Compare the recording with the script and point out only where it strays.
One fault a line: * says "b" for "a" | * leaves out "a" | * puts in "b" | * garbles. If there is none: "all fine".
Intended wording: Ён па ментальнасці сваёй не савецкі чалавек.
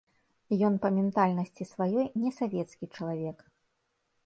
all fine